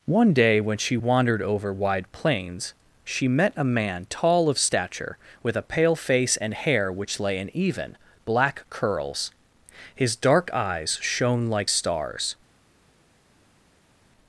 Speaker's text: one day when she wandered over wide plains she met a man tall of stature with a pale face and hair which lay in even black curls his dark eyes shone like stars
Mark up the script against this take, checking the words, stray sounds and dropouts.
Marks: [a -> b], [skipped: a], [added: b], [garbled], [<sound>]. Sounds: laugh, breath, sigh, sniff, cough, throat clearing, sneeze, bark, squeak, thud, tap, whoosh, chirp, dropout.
one day when she wandered over wide plains she met a man tall of stature with a pale face and hair which lay in even black curls his dark eyes shone like stars